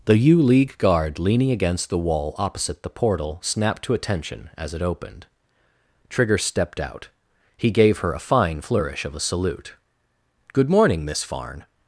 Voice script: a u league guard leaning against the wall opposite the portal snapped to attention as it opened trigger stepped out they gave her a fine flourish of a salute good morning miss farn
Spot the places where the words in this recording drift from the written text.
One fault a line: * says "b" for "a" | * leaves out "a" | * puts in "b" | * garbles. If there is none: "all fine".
* says "the" for "a"
* says "he" for "they"